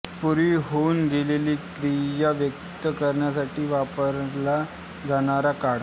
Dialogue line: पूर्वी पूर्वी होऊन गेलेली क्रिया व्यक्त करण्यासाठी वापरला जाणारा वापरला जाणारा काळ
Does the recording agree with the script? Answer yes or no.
no